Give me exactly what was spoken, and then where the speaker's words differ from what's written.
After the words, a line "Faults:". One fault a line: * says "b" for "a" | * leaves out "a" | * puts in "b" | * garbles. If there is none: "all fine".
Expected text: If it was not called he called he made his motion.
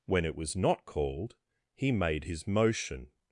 When it was not called he made his motion.
Faults:
* says "When" for "If"
* leaves out "called he"